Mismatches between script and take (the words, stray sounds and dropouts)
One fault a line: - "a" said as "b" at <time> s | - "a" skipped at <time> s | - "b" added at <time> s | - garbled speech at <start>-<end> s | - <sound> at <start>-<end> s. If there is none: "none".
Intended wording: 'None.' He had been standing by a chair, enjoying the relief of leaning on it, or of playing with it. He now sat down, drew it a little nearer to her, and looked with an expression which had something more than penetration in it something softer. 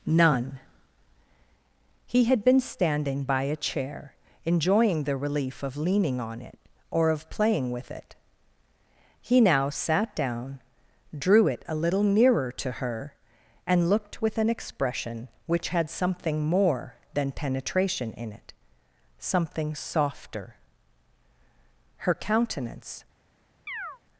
- "Her countenance" added at 22.0 s
- chirp at 23.7-24.0 s